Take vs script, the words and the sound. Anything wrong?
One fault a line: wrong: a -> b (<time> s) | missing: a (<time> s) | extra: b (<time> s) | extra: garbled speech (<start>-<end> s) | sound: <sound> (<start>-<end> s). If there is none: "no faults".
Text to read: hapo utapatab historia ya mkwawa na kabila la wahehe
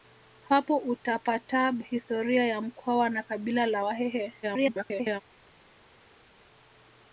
extra: garbled speech (4.4-5.2 s)